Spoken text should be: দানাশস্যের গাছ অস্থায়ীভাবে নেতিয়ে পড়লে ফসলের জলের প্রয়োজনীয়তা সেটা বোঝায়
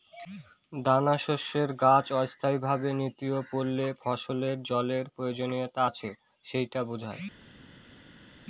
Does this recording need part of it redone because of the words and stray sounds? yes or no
yes